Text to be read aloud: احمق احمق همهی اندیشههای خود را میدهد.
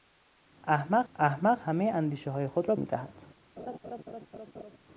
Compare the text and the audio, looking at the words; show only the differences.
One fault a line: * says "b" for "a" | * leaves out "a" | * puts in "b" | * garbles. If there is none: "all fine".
all fine